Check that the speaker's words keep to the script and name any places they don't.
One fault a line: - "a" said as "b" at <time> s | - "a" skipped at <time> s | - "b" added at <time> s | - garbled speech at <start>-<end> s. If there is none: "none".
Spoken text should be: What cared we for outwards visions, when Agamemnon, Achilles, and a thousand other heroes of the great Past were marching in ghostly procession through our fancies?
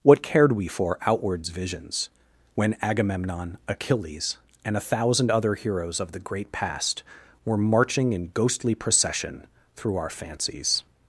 none